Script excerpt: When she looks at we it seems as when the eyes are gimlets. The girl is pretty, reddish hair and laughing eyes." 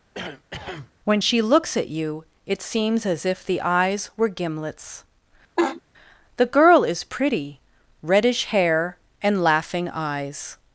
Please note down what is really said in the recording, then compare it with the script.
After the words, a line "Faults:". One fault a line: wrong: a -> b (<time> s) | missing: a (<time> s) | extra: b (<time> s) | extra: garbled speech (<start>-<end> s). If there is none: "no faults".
When she looks at you it seems as if the eyes were gimlets. The girl is pretty, reddish hair and laughing eyes."
Faults:
wrong: we -> you (1.9 s)
wrong: when -> if (3.3 s)
wrong: are -> were (4.2 s)